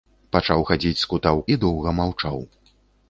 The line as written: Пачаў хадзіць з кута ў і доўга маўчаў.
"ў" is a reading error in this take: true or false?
false